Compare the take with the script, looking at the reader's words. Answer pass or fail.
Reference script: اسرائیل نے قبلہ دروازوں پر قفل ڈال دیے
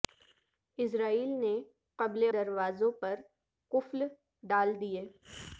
pass